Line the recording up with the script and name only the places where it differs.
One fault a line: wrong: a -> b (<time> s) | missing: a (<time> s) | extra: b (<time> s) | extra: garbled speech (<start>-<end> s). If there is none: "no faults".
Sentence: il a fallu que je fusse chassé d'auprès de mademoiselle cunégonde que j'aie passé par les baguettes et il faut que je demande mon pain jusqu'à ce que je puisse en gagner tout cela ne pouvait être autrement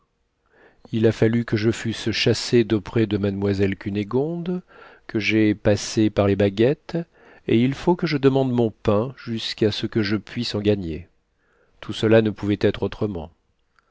no faults